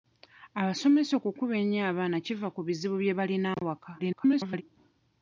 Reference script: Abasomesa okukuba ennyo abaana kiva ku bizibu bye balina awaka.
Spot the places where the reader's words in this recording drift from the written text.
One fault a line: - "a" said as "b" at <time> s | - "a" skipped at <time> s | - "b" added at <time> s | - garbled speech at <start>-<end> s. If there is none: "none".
- garbled speech at 4.0-4.6 s